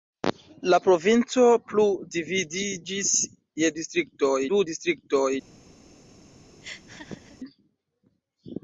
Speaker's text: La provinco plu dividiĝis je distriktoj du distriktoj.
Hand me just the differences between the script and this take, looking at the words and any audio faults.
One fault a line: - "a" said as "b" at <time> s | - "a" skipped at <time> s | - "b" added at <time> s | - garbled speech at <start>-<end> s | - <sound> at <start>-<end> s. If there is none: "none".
- laugh at 6.6-7.4 s